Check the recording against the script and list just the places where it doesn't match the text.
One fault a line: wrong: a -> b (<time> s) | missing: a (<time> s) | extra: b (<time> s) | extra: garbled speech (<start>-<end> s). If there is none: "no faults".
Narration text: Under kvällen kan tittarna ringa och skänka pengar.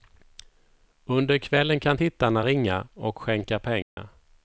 no faults